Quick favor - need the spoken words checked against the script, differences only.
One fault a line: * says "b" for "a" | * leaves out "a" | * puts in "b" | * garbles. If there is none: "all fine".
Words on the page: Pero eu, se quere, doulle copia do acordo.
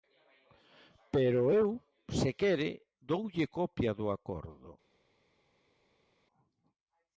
all fine